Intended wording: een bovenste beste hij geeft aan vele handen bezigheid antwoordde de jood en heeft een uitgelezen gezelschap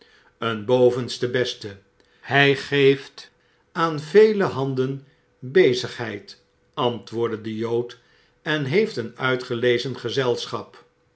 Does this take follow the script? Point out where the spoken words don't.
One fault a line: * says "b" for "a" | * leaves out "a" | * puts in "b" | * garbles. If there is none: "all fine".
all fine